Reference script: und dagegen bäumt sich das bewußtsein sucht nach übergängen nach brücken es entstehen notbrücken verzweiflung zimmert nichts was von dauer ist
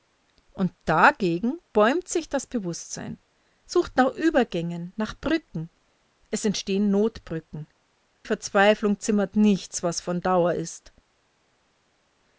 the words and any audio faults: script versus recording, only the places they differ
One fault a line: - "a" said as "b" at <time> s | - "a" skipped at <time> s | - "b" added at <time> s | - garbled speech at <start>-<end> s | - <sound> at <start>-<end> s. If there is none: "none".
none